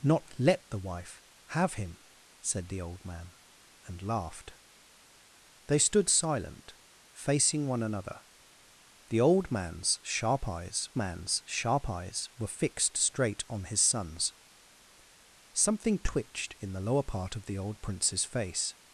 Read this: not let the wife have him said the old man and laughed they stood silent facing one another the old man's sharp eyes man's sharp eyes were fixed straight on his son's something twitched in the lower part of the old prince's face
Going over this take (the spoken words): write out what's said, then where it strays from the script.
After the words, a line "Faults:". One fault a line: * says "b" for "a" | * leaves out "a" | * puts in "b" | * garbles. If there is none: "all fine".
not let the wife have him said the old man and laughed they stood silent facing one another the old man's sharp eyes man's sharp eyes were fixed straight on his son's something twitched in the lower part of the old prince's face
Faults:
all fine